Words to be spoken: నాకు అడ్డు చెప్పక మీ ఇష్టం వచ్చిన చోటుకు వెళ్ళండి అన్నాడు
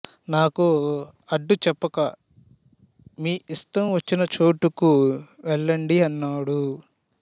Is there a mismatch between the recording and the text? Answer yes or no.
no